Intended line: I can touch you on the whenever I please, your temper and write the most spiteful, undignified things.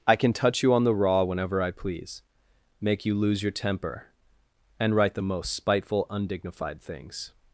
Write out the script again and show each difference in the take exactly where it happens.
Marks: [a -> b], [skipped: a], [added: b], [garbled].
I can touch you on the [added: raw] whenever I please, [added: make you lose] your temper and write the most spiteful, undignified things.